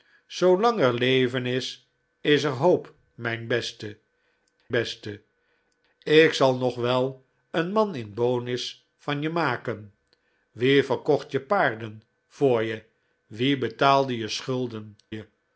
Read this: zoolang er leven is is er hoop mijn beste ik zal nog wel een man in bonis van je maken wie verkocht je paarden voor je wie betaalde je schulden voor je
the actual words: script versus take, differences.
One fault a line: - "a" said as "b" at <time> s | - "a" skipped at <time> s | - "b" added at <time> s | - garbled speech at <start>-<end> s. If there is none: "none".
- "beste" added at 4.7 s
- "voor" skipped at 15.0 s